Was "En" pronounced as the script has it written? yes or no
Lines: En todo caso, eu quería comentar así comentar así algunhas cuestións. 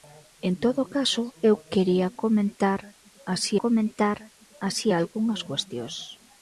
yes